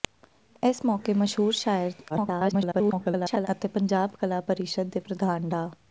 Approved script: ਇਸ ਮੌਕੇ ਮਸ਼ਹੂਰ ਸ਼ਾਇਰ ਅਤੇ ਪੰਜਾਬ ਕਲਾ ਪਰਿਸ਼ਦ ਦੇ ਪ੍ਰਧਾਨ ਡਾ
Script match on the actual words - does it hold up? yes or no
no